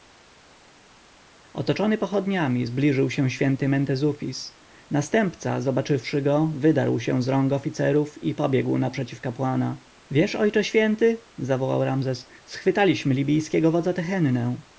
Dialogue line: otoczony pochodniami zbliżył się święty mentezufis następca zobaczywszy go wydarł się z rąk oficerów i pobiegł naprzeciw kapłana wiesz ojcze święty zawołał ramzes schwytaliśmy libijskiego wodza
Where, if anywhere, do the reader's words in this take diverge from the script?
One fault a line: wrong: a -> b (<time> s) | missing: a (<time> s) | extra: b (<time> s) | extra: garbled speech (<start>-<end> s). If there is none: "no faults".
no faults